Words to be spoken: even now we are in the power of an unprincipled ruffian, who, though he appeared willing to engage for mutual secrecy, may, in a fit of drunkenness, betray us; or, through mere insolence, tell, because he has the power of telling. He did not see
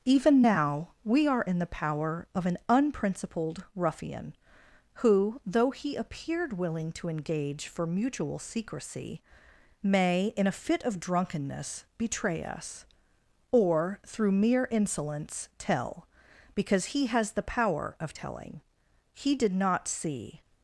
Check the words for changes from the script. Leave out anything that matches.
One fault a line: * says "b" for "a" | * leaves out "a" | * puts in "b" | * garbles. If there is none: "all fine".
all fine